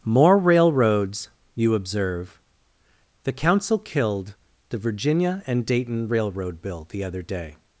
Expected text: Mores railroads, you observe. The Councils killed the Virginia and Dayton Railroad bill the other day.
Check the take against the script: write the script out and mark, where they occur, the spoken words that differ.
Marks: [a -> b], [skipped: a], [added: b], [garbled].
[Mores -> More] railroads, you observe. The [Councils -> Council] killed the Virginia and Dayton Railroad bill the other day.